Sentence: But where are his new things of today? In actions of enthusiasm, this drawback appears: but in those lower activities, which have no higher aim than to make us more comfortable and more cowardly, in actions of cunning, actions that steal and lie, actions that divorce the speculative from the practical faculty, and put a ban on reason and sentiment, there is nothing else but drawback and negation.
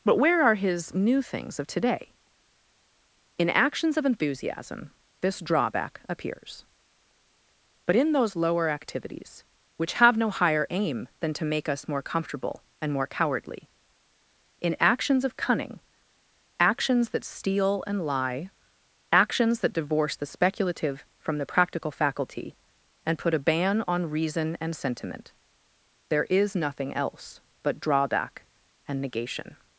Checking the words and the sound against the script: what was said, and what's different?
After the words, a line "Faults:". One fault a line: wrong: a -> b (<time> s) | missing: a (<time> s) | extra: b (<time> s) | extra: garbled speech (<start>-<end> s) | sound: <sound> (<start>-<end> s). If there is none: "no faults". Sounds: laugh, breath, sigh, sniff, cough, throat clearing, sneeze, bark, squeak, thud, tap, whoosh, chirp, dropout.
But where are his new things of today? In actions of enthusiasm, this drawback appears: but in those lower activities, which have no higher aim than to make us more comfortable and more cowardly, in actions of cunning, actions that steal and lie, actions that divorce the speculative from the practical faculty, and put a ban on reason and sentiment, there is nothing else but drawback and negation.
Faults:
no faults